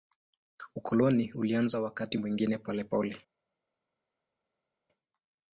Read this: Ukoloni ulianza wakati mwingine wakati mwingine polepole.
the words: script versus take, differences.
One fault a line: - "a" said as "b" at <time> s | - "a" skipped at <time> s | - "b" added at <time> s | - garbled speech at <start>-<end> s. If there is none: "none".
- "wakati mwingine" skipped at 2.6 s